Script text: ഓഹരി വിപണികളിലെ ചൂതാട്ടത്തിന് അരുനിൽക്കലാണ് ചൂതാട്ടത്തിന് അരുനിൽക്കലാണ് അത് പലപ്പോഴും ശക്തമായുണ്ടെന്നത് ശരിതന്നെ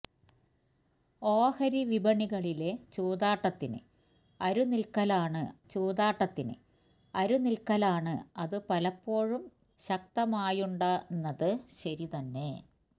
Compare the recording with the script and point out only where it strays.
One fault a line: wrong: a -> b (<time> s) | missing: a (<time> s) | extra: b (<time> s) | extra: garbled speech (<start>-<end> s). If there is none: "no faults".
no faults